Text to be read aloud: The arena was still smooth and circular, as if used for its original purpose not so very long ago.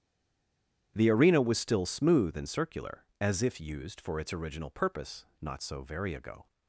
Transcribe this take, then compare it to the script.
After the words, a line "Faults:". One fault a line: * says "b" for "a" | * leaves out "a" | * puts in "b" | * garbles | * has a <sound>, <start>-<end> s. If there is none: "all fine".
The arena was still smooth and circular, as if used for its original purpose not so very ago.
Faults:
* leaves out "long"